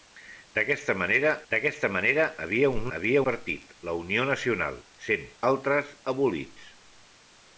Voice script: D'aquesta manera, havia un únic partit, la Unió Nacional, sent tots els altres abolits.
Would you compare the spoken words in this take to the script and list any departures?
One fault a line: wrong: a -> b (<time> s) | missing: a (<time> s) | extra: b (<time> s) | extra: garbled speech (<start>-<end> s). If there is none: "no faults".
extra: d'aquesta manera (1.5 s)
wrong: únic -> havia (3.0 s)
missing: tots els (5.3 s)